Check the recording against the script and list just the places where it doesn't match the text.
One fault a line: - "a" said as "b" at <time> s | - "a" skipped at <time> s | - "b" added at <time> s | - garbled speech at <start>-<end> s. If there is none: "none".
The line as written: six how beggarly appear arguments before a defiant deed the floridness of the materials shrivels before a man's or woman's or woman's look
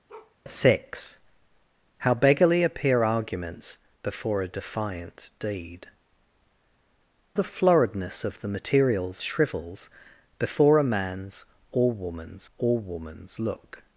none